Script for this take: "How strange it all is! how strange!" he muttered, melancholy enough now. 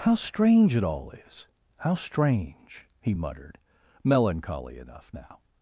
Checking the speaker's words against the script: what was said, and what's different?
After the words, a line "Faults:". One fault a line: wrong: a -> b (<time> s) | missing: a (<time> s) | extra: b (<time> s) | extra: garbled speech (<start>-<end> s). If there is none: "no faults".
"How strange it all is! how strange!" he muttered, melancholy enough now.
Faults:
no faults